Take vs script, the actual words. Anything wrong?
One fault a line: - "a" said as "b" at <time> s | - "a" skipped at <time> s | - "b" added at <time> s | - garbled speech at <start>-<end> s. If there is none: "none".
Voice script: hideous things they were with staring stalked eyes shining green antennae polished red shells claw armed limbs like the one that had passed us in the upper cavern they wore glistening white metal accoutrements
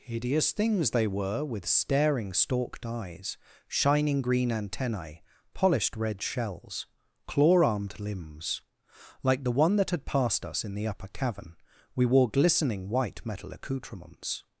- "they" said as "we" at 11.9 s